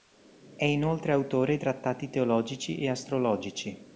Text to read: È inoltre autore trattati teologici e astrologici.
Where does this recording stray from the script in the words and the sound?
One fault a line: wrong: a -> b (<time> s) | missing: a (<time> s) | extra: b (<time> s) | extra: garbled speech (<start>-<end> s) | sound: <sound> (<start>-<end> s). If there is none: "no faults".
no faults